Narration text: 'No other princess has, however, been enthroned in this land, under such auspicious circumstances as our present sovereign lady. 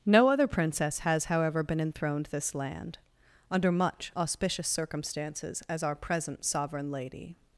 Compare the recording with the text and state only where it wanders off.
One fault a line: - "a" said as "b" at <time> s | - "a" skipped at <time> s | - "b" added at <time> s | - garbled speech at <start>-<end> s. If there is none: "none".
- "in" skipped at 2.3 s
- "such" said as "much" at 3.7 s